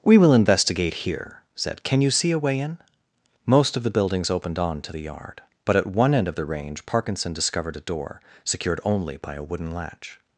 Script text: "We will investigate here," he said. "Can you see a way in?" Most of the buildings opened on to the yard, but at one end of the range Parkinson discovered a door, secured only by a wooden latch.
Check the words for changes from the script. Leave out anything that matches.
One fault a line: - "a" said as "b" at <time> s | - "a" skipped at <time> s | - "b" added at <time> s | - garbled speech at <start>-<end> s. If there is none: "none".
- "he" skipped at 1.4 s